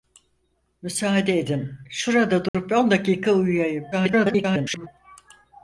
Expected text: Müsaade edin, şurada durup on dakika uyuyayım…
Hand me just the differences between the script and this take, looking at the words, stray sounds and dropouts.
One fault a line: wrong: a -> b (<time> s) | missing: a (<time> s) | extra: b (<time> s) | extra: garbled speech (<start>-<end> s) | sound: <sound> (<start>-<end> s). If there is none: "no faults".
sound: dropout (2.5-2.5 s)
extra: garbled speech (3.9-4.9 s)